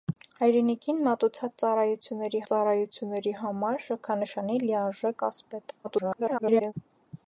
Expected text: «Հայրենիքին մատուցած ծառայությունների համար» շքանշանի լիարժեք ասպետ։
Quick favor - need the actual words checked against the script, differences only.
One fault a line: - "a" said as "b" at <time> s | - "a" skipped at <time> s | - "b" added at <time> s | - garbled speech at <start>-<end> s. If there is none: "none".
- "ծառայությունների" added at 2.5 s
- garbled speech at 5.8-6.7 s